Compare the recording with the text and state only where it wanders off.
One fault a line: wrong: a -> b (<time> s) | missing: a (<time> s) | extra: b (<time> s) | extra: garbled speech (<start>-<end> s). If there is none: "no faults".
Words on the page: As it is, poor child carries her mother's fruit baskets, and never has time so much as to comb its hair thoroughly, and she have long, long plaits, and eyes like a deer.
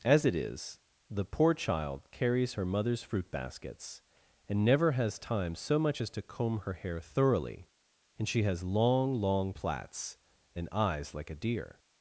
extra: the (1.1 s)
wrong: its -> her (6.6 s)
wrong: have -> has (8.4 s)